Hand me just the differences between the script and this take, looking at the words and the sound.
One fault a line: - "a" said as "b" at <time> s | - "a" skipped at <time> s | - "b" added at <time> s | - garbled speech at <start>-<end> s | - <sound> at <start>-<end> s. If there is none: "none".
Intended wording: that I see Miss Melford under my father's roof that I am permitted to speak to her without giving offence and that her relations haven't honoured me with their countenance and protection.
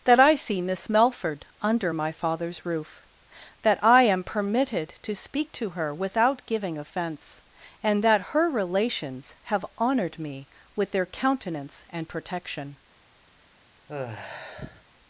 - "haven't" said as "have" at 9.4 s
- sigh at 13.9-14.8 s